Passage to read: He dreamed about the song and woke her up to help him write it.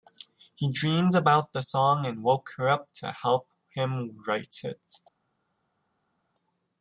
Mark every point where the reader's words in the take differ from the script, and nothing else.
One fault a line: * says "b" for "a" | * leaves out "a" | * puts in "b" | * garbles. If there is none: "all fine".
all fine